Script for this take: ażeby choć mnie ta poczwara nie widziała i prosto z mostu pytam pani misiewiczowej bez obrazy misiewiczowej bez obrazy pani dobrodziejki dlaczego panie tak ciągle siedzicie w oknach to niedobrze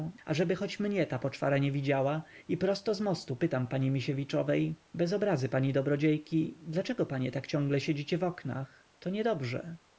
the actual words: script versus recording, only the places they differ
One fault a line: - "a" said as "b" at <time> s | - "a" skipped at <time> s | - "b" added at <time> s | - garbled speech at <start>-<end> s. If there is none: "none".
- "misiewiczowej bez obrazy" skipped at 5.5 s